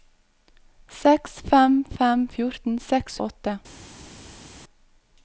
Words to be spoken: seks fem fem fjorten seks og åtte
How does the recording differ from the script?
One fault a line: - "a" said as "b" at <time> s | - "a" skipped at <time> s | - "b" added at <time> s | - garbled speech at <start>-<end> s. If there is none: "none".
none